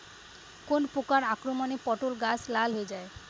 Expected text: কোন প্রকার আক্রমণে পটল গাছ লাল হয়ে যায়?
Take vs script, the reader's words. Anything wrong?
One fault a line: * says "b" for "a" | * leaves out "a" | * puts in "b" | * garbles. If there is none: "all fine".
all fine